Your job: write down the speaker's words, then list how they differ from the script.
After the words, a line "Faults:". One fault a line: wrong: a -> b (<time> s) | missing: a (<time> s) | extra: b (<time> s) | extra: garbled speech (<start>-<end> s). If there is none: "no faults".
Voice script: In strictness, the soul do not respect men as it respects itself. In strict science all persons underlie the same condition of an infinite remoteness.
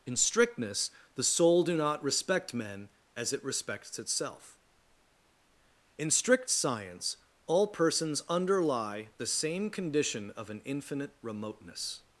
In strictness, the soul do not respect men as it respects itself. In strict science all persons underlie the same condition of an infinite remoteness.
Faults:
no faults